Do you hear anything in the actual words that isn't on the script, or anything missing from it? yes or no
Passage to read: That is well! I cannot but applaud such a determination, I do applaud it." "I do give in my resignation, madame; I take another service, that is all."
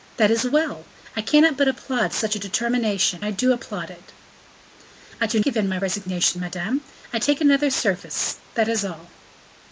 no